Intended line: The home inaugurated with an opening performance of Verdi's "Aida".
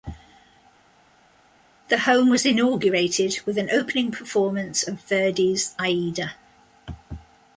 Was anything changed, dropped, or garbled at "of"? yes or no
no